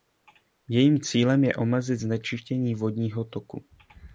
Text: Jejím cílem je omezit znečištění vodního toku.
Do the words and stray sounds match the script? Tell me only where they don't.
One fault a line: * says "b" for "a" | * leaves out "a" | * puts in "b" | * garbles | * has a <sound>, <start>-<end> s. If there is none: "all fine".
all fine